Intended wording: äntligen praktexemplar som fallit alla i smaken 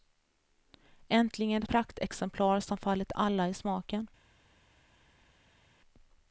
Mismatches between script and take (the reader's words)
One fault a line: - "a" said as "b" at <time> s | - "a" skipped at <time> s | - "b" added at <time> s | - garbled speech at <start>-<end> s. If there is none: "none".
none